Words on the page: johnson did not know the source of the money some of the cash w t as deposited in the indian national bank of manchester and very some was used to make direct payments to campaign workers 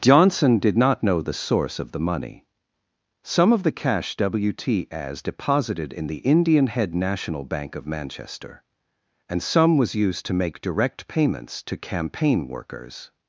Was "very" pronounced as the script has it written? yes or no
no